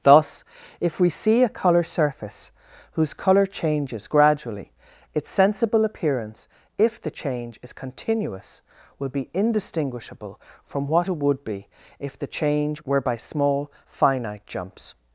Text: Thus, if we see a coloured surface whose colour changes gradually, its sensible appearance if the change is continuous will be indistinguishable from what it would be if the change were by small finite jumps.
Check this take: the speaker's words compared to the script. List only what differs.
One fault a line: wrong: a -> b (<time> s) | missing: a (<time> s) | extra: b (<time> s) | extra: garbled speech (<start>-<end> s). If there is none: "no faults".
wrong: coloured -> colour (1.5 s)